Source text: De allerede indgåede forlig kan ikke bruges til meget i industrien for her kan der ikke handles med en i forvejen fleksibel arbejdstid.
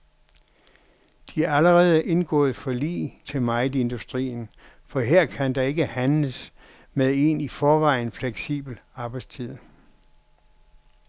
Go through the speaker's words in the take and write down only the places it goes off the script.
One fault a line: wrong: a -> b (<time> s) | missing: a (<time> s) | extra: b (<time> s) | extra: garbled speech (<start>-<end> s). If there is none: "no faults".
missing: kan ikke bruges (3.2 s)